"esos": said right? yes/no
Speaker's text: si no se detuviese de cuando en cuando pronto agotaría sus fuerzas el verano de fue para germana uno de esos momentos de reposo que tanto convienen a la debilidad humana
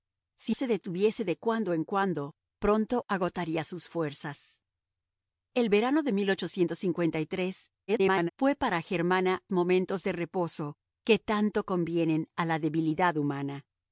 no